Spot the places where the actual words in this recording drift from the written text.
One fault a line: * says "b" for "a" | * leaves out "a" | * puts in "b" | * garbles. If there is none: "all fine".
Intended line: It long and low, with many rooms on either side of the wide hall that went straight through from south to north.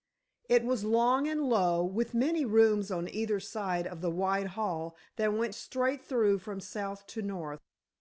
* puts in "was"